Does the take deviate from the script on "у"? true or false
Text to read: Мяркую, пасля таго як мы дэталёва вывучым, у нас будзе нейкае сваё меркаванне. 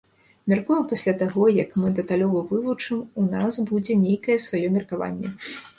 false